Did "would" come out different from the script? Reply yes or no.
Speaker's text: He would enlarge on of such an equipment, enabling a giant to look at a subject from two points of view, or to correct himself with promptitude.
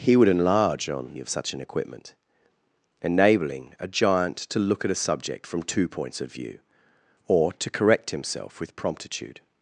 no